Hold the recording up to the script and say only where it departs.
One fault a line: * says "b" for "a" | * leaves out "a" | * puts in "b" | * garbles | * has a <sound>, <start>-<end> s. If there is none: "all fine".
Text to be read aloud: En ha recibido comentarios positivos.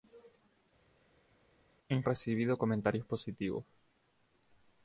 all fine